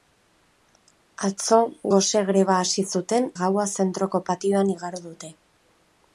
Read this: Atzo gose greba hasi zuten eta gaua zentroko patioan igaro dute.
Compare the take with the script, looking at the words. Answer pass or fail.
fail